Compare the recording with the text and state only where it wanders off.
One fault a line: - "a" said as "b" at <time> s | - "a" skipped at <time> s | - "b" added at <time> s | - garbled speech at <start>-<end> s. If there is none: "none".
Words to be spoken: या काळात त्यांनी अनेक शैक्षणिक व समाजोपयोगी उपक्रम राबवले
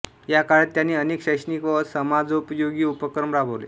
none